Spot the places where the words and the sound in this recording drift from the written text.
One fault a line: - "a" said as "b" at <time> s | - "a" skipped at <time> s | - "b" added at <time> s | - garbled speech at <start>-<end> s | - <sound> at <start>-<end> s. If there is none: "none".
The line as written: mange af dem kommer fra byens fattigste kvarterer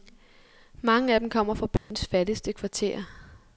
- dropout at 1.8-1.9 s